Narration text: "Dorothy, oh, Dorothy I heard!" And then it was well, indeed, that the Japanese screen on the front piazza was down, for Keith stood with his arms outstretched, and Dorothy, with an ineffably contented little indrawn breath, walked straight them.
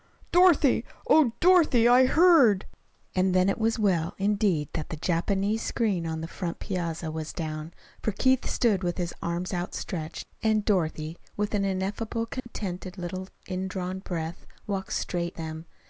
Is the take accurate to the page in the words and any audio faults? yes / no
no